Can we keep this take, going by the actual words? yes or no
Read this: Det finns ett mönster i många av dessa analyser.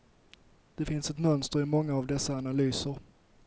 yes